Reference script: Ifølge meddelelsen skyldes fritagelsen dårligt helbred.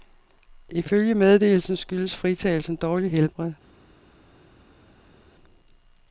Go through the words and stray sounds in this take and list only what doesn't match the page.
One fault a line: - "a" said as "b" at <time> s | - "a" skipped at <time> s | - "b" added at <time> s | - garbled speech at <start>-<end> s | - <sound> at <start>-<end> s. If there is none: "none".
none